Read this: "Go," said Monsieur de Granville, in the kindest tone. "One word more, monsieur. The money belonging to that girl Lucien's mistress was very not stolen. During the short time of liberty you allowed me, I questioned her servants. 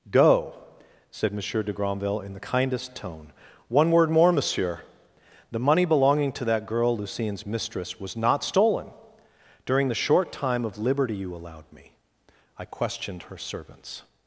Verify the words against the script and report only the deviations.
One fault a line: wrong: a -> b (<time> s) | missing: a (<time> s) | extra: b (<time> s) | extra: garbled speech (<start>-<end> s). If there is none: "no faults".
missing: very (8.1 s)